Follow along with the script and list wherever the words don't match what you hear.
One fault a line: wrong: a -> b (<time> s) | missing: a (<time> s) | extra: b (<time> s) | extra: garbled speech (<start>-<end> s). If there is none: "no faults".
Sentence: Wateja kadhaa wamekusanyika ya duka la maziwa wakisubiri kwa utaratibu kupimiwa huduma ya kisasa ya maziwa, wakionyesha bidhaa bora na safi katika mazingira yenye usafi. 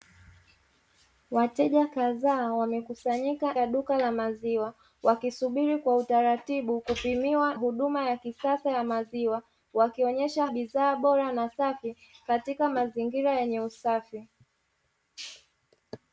no faults